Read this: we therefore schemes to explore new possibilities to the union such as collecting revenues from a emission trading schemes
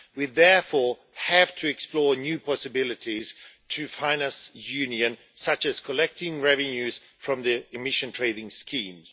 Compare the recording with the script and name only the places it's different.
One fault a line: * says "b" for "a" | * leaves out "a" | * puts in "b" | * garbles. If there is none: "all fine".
* says "have" for "schemes"
* puts in "finance"
* says "the" for "a"